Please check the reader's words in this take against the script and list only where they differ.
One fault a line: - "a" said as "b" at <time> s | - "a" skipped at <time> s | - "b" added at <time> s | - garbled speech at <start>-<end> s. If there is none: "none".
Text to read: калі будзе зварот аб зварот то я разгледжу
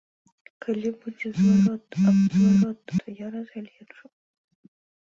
none